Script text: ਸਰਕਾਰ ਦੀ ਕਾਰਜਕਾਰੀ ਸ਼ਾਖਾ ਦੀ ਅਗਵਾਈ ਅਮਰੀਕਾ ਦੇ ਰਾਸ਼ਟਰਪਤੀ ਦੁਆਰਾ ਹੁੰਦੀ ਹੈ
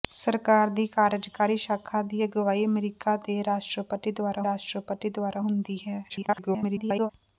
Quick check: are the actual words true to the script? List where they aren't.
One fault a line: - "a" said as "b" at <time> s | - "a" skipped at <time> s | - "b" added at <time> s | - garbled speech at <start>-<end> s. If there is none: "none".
- "ਰਾਸ਼ਟਰਪਤੀ ਦੁਆਰਾ" added at 4.4 s
- garbled speech at 6.1-7.1 s